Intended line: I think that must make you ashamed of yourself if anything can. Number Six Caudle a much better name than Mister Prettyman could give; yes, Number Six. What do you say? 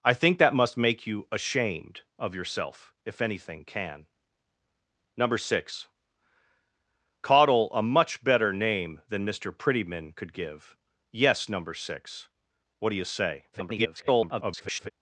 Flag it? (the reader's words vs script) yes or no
yes